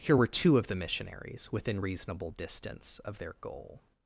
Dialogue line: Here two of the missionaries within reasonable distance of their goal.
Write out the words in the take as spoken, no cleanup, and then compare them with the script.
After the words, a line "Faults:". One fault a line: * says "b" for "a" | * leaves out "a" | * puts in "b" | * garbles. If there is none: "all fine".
Here were two of the missionaries within reasonable distance of their goal.
Faults:
* puts in "were"